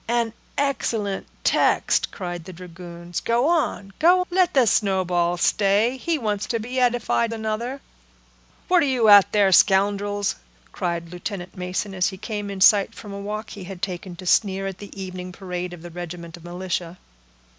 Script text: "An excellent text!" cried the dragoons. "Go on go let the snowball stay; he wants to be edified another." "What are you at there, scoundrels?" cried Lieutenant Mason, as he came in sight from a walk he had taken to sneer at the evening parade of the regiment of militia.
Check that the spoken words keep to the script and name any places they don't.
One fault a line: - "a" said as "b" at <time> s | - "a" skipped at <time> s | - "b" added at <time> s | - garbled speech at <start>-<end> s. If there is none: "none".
none